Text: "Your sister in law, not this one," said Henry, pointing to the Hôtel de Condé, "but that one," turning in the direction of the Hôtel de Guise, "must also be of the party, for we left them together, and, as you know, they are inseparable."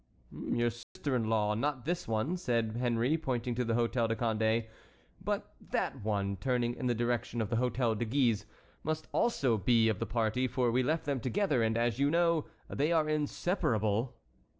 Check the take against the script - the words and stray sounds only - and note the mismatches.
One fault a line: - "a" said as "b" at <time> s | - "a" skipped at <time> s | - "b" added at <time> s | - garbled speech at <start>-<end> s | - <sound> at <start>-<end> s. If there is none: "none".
- dropout at 0.8-1.0 s